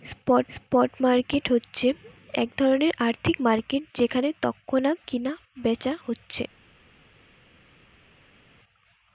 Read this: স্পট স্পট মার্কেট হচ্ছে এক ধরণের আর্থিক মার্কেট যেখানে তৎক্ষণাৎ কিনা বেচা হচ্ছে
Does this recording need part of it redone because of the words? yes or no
no